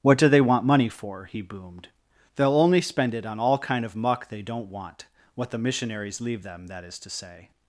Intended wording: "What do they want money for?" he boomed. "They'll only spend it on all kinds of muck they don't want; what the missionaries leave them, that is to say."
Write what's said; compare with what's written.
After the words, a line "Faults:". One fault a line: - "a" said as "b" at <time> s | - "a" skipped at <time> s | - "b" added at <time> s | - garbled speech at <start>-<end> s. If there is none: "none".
"What do they want money for?" he boomed. "They'll only spend it on all kind of muck they don't want; what the missionaries leave them, that is to say."
Faults:
- "kinds" said as "kind" at 3.6 s